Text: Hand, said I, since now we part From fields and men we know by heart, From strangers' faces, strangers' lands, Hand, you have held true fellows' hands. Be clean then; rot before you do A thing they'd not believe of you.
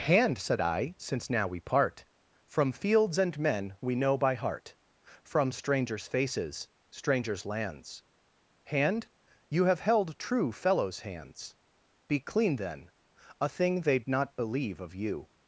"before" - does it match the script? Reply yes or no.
no